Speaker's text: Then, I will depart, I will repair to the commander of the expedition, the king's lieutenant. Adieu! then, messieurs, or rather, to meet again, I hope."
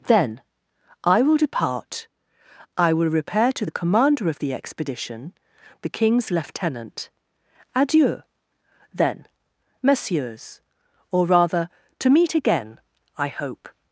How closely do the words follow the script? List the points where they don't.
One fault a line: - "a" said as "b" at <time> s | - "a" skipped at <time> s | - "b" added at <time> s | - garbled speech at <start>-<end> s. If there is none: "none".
none